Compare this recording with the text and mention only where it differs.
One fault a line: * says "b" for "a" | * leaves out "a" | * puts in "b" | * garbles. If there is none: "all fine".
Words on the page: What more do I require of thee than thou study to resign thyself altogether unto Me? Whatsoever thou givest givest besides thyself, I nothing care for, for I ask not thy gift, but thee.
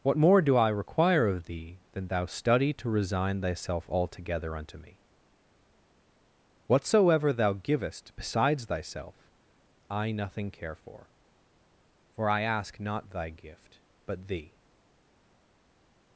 * leaves out "givest"